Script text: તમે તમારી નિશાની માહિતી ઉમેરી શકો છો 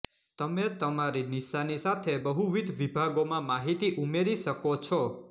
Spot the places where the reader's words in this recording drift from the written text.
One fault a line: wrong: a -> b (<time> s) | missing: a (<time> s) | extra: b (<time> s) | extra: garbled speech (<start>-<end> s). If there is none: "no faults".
extra: સાથે બહુવિધ વિભાગોમાં (1.8 s)